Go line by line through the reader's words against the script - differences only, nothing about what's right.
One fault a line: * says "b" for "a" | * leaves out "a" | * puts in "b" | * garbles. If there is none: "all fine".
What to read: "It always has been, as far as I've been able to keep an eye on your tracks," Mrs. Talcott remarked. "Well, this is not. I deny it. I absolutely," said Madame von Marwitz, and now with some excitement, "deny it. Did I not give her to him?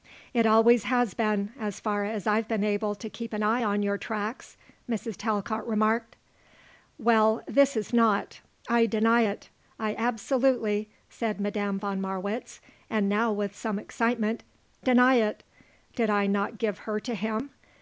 all fine